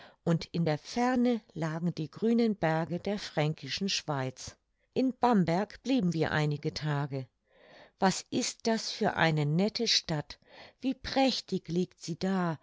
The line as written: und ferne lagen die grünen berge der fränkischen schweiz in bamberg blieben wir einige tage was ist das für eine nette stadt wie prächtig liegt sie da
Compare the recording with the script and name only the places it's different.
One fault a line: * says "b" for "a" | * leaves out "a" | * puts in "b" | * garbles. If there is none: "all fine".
* puts in "in der"